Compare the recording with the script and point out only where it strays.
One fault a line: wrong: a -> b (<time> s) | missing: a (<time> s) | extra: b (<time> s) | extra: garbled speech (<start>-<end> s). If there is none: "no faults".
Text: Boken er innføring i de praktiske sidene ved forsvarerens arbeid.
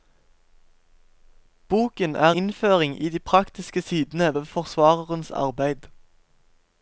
no faults